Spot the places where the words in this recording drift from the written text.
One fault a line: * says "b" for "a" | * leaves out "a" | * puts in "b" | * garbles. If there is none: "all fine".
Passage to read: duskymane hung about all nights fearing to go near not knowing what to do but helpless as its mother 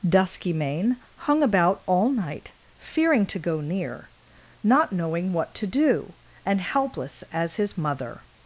* says "night" for "nights"
* says "and" for "but"
* says "his" for "its"